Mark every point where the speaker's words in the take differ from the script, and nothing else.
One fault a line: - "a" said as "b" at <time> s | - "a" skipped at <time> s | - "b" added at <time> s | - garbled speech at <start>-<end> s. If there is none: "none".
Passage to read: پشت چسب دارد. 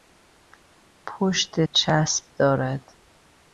none